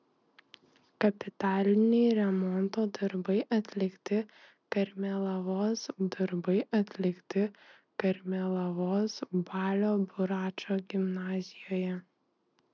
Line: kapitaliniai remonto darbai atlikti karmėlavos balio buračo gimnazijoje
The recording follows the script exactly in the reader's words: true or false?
false